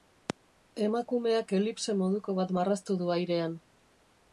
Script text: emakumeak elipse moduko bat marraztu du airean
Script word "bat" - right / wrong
right